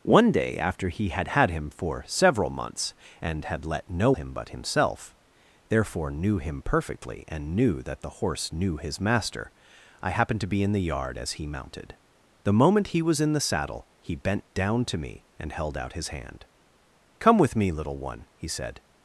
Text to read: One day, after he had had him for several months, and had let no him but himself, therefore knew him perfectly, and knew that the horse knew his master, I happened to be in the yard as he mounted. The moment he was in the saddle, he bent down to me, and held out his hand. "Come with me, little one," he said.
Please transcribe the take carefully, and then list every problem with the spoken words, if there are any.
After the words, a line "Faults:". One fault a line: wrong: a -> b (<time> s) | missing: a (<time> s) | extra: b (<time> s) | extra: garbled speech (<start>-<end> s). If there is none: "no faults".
One day, after he had had him for several months, and had let no him but himself, therefore knew him perfectly, and knew that the horse knew his master, I happened to be in the yard as he mounted. The moment he was in the saddle, he bent down to me, and held out his hand. "Come with me, little one," he said.
Faults:
no faults